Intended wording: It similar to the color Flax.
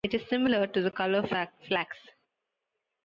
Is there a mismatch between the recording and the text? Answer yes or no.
yes